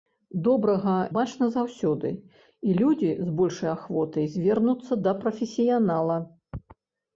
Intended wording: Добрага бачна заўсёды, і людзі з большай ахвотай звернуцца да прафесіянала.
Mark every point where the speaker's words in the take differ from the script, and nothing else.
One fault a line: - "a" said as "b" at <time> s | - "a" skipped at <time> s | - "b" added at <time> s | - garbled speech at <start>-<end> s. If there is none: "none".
none